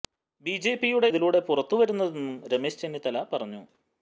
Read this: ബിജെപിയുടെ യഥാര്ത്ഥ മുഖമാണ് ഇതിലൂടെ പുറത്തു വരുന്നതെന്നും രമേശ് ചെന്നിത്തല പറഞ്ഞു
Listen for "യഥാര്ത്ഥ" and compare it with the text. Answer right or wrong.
wrong